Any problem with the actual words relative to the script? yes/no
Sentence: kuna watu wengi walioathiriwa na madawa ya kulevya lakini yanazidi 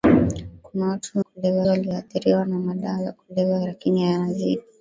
yes